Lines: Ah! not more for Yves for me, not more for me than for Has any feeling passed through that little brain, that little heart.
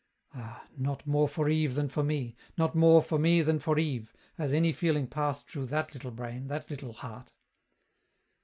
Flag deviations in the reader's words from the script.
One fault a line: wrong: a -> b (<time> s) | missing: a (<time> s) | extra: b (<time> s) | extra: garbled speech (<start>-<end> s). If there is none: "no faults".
extra: than (1.8 s)
extra: Yves (3.8 s)